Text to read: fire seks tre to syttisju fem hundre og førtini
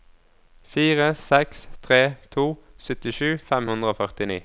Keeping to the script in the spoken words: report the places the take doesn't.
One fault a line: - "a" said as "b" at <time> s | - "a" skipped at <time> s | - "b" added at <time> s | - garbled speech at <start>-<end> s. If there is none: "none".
none